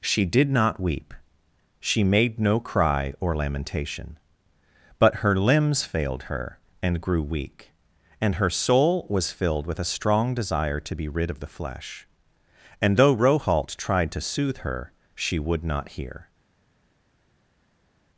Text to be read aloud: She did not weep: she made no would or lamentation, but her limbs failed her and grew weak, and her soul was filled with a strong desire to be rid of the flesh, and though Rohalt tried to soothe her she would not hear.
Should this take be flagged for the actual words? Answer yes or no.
yes